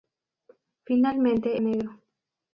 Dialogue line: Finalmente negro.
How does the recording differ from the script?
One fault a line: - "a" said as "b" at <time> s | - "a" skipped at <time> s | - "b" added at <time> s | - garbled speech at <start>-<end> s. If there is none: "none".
none